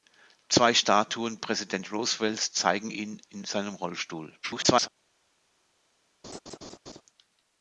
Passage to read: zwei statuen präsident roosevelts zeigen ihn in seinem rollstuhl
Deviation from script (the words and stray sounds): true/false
true